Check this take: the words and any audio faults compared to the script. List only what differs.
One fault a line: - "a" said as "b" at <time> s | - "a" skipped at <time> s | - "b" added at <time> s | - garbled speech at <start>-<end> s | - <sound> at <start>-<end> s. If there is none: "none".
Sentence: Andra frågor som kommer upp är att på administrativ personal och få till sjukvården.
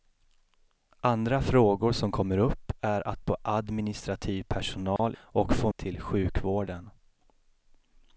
- dropout at 5.0-5.0 s